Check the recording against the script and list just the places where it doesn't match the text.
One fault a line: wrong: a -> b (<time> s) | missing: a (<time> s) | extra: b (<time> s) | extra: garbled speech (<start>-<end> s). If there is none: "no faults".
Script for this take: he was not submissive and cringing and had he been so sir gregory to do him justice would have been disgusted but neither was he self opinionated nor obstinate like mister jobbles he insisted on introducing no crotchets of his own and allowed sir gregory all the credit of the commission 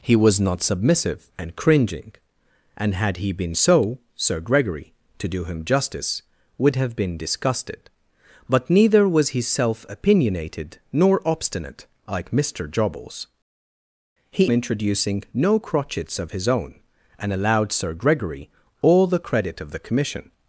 missing: insisted on (14.5 s)